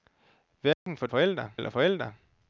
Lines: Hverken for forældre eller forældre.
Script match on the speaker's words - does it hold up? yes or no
yes